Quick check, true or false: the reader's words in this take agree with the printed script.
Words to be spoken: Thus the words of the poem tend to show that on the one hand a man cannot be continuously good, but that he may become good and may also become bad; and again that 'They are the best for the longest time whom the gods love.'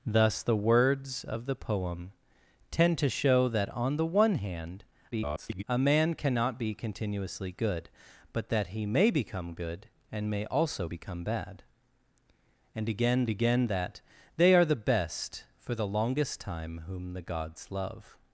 false